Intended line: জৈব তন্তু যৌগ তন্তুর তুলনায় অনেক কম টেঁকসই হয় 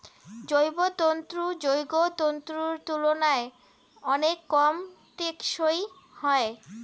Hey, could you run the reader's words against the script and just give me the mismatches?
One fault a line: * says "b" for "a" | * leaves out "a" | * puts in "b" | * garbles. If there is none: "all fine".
all fine